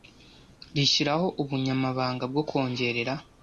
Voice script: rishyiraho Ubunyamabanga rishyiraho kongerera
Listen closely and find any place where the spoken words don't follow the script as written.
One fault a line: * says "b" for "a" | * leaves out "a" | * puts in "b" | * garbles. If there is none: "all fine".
* says "bwo" for "rishyiraho"